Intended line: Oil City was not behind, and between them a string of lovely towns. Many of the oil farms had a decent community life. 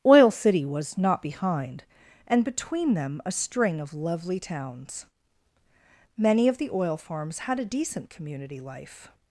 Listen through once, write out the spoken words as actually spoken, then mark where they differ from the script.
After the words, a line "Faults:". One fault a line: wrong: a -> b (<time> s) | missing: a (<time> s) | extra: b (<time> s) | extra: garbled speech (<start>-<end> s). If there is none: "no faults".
Oil City was not behind, and between them a string of lovely towns. Many of the oil farms had a decent community life.
Faults:
no faults